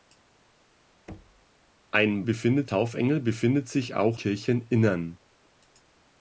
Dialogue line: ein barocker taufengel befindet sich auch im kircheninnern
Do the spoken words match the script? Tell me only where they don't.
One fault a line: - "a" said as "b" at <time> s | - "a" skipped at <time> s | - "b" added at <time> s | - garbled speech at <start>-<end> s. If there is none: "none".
- "barocker" said as "befindet" at 2.2 s
- "im" skipped at 4.2 s